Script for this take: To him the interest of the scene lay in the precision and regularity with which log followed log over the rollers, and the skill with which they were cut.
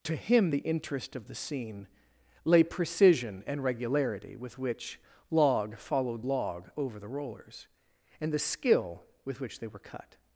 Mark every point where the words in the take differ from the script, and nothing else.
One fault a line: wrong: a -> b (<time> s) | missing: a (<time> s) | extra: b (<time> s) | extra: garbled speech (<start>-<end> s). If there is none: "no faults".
missing: in the (2.6 s)